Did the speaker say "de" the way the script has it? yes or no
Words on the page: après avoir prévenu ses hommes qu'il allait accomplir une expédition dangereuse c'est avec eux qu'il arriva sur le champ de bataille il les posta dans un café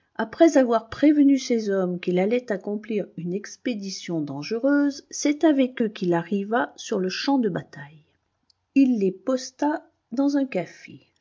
yes